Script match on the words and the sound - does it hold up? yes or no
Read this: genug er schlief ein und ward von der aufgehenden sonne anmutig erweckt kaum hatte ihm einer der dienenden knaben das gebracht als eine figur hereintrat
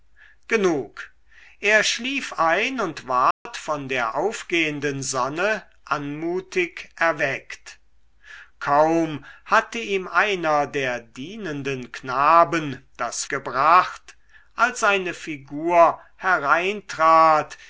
no